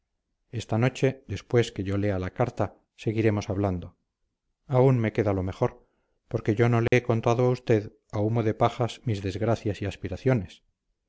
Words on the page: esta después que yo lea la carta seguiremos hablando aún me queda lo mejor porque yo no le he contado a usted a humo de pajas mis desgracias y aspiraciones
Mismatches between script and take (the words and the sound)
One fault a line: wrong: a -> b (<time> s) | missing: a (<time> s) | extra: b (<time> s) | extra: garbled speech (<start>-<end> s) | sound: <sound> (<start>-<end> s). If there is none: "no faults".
extra: noche (0.8 s)
sound: dropout (6.9-6.9 s)